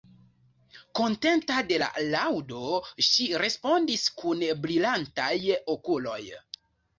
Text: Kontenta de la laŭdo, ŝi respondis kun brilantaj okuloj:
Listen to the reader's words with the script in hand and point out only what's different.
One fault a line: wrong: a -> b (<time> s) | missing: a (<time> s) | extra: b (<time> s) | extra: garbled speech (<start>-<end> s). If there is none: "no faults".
no faults